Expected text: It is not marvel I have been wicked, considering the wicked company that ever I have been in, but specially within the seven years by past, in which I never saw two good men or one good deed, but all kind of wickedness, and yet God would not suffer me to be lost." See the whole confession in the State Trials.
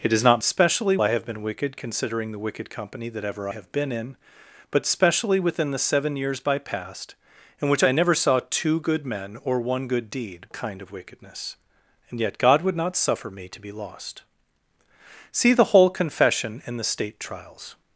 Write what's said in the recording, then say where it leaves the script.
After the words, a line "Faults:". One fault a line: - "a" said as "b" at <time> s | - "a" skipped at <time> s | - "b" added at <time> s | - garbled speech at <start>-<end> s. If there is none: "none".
It is not specially I have been wicked, considering the wicked company that ever have been in, but specially within the seven years by past, in which I never saw two good men or one good deed, kind of wickedness, and yet God would not suffer me to be lost." See the whole confession in the State Trials.
Faults:
- "marvel" said as "specially" at 0.4 s
- "I" skipped at 3.5 s
- "but all" skipped at 10.5 s